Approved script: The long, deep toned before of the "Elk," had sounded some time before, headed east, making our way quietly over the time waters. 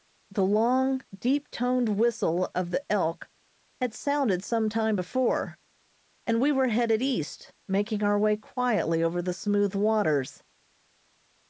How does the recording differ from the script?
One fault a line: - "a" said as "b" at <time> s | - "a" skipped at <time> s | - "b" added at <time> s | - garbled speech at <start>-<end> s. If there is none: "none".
- "before" said as "whistle" at 2.0 s
- "and we were" added at 6.2 s
- "time" said as "smooth" at 9.3 s